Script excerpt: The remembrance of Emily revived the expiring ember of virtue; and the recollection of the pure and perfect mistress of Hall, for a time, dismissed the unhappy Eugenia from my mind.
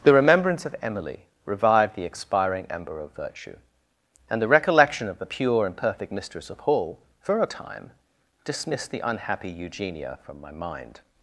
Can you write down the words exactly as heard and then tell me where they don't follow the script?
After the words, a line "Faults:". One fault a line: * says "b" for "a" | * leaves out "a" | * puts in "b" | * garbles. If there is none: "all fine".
The remembrance of Emily revived the expiring ember of virtue; and the recollection of the pure and perfect mistress of Hall, for a time, dismissed the unhappy Eugenia from my mind.
Faults:
all fine